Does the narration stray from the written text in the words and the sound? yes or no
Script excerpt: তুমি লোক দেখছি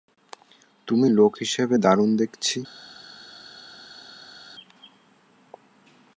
yes